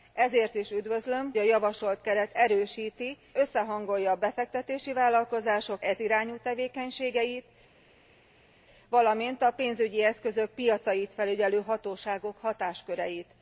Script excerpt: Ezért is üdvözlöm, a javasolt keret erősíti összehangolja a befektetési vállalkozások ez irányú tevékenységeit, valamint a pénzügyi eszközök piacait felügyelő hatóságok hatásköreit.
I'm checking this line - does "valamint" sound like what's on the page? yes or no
yes